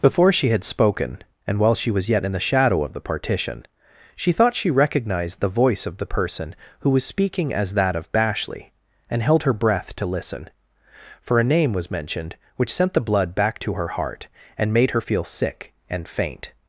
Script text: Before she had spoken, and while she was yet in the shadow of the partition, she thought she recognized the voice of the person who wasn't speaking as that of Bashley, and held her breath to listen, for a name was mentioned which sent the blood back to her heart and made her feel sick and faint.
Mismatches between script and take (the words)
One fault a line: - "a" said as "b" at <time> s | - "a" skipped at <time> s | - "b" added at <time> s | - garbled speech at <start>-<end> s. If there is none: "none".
- "wasn't" said as "was" at 6.9 s